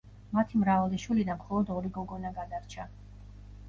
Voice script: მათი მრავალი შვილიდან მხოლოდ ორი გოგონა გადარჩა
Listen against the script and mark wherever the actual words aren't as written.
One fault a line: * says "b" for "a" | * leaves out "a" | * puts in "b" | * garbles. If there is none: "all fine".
all fine